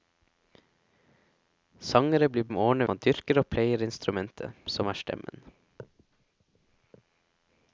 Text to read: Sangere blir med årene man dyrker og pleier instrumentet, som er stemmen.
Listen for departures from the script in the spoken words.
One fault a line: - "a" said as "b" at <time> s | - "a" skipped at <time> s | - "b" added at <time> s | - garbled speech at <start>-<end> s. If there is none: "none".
none